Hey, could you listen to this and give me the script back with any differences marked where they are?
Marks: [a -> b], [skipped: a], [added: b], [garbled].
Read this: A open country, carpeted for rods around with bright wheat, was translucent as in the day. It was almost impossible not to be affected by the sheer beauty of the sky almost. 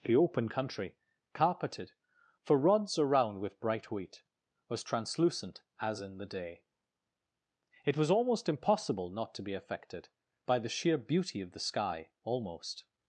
[A -> The] open country, carpeted for rods around with bright wheat, was translucent as in the day. It was almost impossible not to be affected by the sheer beauty of the sky almost.